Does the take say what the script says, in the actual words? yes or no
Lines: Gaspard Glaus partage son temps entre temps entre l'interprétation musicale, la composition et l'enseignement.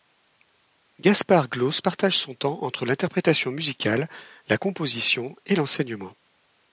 no